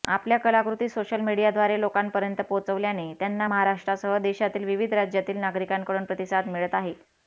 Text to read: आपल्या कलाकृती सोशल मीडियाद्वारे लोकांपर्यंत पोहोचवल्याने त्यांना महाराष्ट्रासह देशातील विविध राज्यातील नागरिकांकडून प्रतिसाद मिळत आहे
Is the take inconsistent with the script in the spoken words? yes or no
no